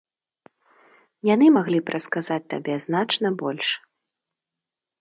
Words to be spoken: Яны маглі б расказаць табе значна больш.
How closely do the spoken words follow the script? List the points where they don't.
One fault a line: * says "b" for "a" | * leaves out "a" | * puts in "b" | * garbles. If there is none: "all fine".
all fine